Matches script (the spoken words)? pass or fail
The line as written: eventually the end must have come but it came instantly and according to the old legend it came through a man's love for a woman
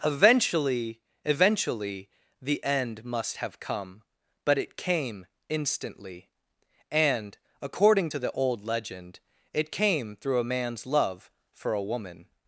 fail